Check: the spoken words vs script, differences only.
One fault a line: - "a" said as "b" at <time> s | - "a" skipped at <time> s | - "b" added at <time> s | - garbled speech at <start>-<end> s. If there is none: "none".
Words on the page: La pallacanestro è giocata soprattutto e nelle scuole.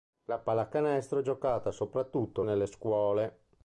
none